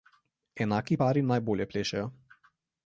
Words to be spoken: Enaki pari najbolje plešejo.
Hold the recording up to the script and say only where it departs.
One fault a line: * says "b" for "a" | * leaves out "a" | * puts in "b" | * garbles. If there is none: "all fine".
all fine